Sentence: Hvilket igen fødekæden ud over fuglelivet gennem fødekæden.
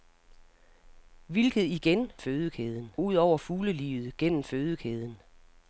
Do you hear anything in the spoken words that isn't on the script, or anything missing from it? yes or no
no